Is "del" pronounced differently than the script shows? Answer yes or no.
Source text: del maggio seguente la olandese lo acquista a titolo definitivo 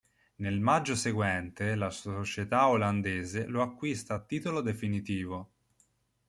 yes